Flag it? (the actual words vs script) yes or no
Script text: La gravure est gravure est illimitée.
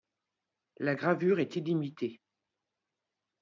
yes